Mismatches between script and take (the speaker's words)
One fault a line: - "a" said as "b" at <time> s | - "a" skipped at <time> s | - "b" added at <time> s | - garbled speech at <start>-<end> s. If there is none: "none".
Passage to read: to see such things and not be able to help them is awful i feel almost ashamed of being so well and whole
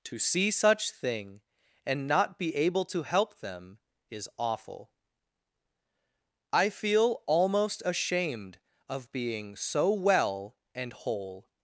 - "things" said as "thing" at 0.9 s